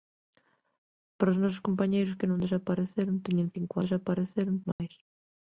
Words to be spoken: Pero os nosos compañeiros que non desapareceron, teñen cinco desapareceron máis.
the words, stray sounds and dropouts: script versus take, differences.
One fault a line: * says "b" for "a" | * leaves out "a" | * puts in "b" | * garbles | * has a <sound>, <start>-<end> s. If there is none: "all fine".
* has a dropout, 4.7-4.8 s